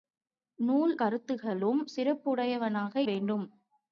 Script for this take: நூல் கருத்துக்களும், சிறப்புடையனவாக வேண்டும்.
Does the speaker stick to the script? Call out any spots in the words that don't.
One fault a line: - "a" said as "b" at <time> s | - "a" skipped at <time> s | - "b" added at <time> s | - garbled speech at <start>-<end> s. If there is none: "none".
none